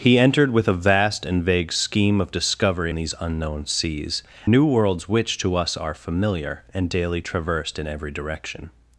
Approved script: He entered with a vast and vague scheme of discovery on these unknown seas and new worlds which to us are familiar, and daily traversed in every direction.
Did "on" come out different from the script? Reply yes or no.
yes